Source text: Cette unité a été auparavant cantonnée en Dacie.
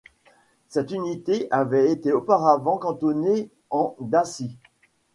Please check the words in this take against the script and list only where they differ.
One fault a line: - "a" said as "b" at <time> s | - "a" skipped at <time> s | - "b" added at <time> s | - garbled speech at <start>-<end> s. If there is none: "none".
- "a" said as "avait" at 1.5 s